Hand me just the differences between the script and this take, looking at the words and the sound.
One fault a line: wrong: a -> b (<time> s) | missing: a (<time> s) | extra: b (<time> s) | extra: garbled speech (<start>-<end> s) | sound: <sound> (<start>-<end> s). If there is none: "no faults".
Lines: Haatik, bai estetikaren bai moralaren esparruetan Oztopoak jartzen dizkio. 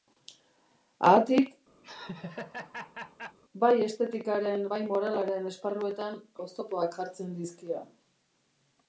sound: laugh (1.8-3.4 s)